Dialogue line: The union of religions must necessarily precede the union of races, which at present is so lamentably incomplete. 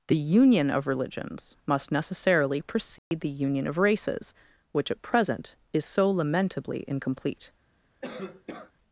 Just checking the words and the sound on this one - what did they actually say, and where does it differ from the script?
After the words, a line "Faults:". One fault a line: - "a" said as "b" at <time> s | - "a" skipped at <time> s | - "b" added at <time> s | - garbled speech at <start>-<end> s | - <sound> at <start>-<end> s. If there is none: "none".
The union of religions must necessarily precede the union of races, which at present is so lamentably incomplete.
Faults:
- dropout at 3.0-3.1 s
- cough at 8.0-8.7 s